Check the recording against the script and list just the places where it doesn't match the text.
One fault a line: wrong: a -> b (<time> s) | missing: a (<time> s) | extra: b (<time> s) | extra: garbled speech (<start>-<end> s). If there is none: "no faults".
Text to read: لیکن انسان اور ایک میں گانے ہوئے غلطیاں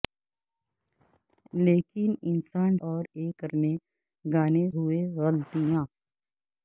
no faults